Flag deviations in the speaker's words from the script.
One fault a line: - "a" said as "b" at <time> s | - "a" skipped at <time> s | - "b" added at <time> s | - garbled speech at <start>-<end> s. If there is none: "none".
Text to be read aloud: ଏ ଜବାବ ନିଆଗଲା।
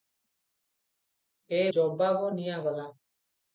none